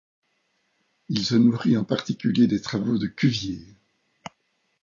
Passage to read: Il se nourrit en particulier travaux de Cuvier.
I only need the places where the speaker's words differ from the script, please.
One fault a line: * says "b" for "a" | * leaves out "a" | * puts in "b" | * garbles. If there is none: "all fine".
* puts in "des"